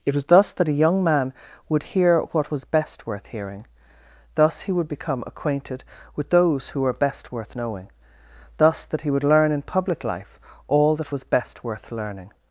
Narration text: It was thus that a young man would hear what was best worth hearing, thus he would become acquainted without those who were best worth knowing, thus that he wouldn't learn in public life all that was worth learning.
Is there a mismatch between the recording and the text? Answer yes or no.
yes